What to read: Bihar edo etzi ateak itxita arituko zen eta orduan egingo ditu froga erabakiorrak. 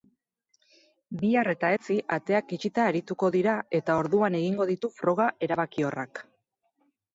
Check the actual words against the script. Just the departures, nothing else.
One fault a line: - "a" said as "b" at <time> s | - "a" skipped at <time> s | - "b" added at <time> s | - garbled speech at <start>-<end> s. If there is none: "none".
- "edo" said as "eta" at 1.5 s
- "zen" said as "dira" at 3.4 s